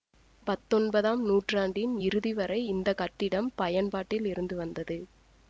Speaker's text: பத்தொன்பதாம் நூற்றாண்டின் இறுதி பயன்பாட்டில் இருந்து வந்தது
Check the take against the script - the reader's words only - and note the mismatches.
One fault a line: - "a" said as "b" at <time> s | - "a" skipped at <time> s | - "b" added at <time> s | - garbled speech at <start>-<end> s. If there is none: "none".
- "வரை இந்த கட்டிடம்" added at 2.3 s